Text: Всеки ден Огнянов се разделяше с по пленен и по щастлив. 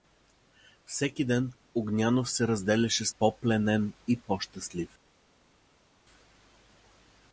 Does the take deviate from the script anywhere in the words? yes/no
no